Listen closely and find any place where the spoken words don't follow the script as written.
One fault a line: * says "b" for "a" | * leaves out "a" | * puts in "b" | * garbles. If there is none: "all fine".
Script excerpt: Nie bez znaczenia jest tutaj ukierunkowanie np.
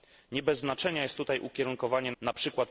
all fine